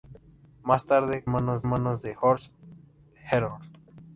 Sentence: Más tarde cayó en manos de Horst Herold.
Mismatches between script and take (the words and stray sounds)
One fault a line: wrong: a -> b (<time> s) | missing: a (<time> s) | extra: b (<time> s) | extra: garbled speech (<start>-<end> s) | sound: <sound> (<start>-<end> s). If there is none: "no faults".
wrong: cayó -> manos (1.3 s)